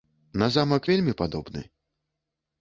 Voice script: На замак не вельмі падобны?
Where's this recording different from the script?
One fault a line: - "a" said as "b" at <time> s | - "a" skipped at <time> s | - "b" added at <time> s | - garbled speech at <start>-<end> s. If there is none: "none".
- "не" skipped at 0.9 s